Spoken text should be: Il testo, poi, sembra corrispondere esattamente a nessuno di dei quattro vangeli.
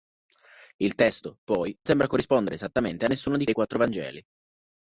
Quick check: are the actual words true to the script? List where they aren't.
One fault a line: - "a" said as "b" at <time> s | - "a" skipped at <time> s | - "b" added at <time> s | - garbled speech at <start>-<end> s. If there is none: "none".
none